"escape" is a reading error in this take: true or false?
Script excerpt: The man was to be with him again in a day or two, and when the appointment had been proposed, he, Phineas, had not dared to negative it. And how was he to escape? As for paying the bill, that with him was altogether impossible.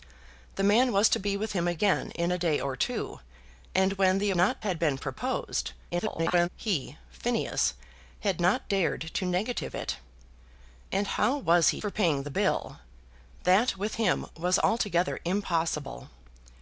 true